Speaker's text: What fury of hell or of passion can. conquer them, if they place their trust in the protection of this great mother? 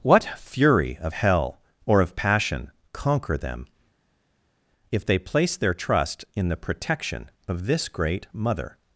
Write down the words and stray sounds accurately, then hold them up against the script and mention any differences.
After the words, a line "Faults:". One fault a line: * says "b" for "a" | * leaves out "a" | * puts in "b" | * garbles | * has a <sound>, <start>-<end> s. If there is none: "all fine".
What fury of hell or of passion. conquer them, if they place their trust in the protection of this great mother?
Faults:
* leaves out "can"